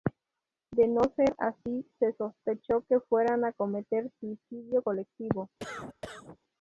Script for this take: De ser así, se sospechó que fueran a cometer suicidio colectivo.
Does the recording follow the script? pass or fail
fail